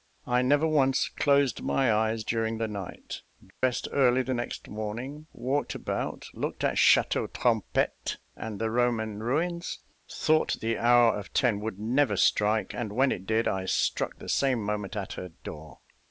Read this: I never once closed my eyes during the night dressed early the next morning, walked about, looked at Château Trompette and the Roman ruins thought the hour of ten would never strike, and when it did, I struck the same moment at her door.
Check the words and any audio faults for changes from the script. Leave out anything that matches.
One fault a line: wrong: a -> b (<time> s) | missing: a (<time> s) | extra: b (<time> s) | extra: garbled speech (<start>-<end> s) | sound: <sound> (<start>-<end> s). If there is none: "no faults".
sound: dropout (3.5-3.6 s)